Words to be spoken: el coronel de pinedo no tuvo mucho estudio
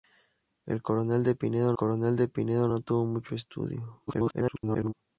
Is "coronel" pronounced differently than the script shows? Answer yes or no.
no